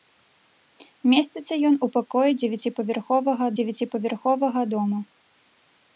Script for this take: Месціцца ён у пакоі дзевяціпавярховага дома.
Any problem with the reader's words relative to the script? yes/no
yes